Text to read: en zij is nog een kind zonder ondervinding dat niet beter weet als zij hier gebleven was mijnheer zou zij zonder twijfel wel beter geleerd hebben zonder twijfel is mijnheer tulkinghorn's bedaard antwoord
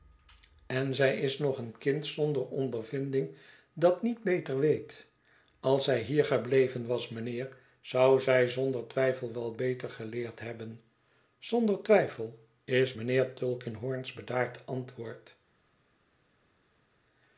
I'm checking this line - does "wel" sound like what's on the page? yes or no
yes